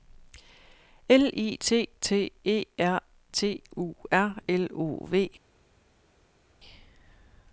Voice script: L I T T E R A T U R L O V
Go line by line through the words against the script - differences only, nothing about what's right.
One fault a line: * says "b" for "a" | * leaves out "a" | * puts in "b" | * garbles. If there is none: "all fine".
* leaves out "A"